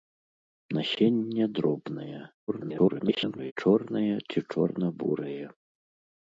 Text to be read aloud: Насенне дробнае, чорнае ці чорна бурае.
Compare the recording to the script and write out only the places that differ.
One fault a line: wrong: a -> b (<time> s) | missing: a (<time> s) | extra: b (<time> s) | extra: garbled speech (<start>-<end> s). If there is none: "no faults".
extra: garbled speech (2.5-3.5 s)